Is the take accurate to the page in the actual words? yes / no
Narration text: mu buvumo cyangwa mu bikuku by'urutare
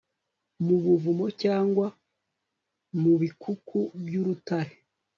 yes